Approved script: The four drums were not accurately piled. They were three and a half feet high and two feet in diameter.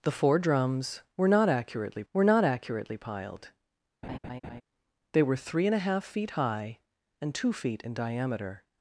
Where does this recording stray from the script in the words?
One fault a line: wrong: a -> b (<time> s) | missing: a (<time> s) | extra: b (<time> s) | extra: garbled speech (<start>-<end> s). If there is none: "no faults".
extra: were not accurately (2.1 s)